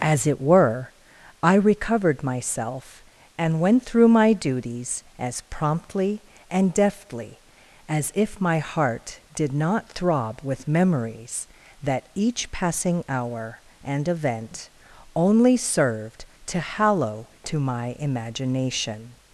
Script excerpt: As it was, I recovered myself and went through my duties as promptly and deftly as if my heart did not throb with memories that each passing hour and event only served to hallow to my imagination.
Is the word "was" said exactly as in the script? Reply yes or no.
no